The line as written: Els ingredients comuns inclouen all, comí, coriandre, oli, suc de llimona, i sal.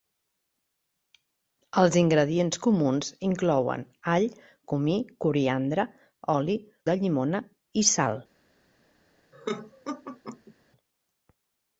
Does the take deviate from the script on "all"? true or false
false